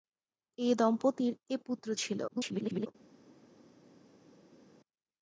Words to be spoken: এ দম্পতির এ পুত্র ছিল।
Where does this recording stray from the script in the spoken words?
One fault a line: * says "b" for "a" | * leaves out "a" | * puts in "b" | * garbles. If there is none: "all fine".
* garbles